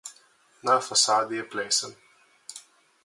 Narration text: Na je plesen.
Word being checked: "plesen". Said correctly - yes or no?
yes